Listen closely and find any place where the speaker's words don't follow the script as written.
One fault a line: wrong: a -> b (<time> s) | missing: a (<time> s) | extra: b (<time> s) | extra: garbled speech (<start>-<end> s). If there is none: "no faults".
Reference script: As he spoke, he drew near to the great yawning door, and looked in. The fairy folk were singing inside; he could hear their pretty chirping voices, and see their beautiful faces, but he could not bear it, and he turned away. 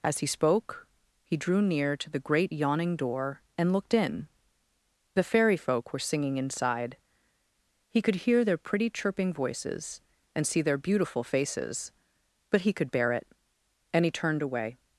missing: not (12.9 s)